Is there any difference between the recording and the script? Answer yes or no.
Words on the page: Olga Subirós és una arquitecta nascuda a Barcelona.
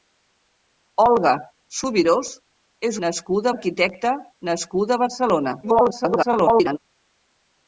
yes